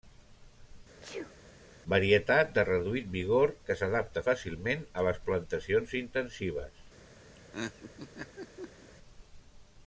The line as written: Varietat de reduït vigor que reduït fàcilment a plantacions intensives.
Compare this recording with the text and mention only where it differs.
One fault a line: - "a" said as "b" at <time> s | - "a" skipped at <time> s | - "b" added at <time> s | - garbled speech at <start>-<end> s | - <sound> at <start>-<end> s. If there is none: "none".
- sneeze at 1.0-1.3 s
- "reduït" said as "s'adapta" at 3.8 s
- "les" added at 5.1 s
- laugh at 7.3-8.9 s